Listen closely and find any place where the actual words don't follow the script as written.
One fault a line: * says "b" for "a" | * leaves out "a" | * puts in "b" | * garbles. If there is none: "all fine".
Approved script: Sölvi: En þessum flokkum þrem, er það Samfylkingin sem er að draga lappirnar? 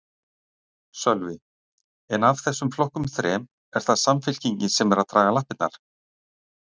* puts in "af"